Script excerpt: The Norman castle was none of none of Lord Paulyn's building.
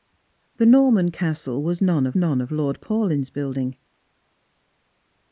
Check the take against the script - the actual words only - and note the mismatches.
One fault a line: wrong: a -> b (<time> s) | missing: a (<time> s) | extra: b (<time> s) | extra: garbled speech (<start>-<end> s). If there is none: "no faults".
no faults